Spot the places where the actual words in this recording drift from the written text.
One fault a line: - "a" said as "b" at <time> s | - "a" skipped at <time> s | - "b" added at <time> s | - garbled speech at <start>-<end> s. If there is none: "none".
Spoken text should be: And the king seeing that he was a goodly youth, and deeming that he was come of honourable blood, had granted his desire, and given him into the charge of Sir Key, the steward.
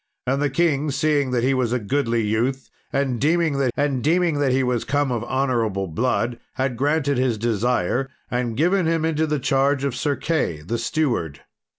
- "and deeming that" added at 3.8 s